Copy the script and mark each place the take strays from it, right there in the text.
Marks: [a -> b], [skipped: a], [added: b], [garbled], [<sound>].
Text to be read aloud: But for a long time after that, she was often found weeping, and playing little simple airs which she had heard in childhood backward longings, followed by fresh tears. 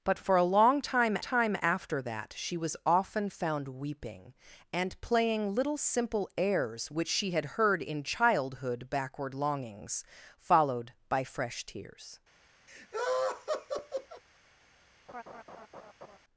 But for a long time [added: time] after that, she was often found weeping, and playing little simple airs which she had heard in childhood backward longings, followed by fresh tears. [laugh] [laugh]